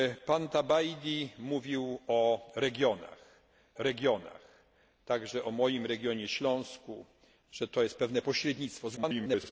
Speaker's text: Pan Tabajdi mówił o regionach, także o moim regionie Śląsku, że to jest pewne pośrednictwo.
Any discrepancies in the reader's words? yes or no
yes